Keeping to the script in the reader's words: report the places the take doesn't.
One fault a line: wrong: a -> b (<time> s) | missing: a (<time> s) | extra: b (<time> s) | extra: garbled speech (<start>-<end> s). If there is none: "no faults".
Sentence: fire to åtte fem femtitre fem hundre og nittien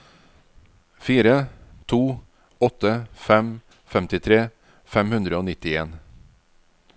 no faults